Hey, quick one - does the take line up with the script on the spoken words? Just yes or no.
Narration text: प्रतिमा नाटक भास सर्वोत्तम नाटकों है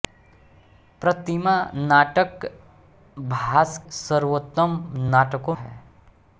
yes